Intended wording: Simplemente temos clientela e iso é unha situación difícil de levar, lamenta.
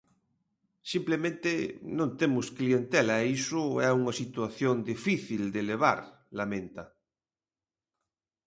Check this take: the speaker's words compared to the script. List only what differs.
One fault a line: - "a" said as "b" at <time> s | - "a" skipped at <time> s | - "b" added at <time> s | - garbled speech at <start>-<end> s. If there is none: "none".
- "non" added at 2.0 s